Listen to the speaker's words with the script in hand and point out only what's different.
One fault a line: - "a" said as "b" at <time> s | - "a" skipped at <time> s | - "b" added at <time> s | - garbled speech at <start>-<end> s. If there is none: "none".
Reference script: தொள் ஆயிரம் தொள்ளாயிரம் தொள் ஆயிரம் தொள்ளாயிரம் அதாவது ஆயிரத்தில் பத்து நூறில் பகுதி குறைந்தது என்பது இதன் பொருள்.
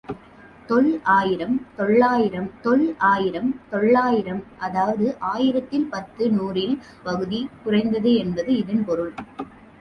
none